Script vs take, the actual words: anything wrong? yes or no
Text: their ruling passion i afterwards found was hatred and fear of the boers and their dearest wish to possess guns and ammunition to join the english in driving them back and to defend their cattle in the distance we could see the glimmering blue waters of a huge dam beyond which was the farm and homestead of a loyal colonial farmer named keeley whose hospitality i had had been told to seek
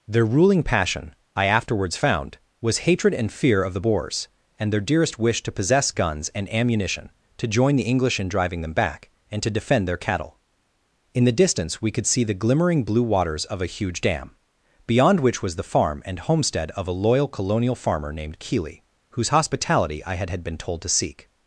no